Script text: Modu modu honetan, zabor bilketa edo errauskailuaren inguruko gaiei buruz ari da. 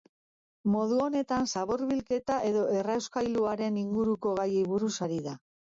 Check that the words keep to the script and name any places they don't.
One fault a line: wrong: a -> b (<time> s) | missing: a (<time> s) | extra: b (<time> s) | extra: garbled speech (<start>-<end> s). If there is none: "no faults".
missing: modu (1.0 s)